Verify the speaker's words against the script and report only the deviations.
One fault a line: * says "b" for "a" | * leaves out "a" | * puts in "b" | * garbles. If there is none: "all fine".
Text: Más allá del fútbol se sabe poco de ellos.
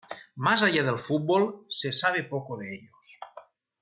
all fine